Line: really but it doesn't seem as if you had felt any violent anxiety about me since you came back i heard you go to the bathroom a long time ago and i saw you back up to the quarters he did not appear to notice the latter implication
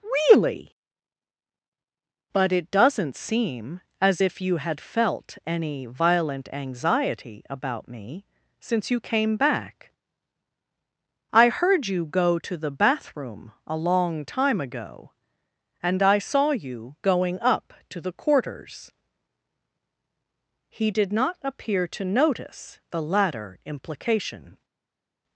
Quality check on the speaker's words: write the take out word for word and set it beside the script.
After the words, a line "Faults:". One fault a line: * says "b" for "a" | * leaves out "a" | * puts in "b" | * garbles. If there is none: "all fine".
really but it doesn't seem as if you had felt any violent anxiety about me since you came back i heard you go to the bathroom a long time ago and i saw you going up to the quarters he did not appear to notice the latter implication
Faults:
* says "going" for "back"